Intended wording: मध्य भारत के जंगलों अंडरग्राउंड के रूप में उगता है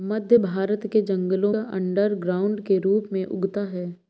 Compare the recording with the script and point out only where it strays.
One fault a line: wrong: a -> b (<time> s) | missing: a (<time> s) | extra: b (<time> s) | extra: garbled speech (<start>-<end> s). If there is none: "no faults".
no faults